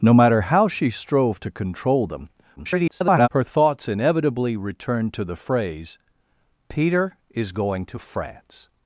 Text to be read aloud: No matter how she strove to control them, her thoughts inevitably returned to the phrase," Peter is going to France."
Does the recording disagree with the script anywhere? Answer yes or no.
yes